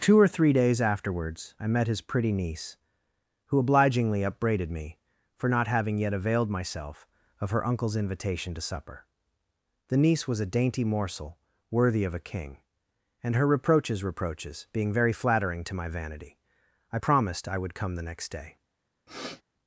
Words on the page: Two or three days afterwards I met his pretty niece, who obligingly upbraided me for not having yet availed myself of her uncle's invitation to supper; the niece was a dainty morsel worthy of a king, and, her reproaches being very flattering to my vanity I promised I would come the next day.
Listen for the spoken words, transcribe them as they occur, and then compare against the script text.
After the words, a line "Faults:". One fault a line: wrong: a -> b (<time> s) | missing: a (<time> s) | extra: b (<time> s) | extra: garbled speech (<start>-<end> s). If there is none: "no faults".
Two or three days afterwards I met his pretty niece, who obligingly upbraided me for not having yet availed myself of her uncle's invitation to supper; the niece was a dainty morsel worthy of a king, and, her reproaches reproaches being very flattering to my vanity I promised I would come the next day.
Faults:
extra: reproaches (14.0 s)